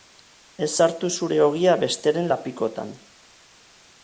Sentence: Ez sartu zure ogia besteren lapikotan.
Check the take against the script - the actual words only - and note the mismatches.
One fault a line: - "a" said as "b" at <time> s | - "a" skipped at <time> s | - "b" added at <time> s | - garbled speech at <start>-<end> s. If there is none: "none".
none